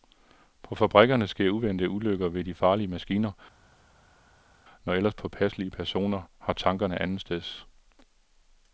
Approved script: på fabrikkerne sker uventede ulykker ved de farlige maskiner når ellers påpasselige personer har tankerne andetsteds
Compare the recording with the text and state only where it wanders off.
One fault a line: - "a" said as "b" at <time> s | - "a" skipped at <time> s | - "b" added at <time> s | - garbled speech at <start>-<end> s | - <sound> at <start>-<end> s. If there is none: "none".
none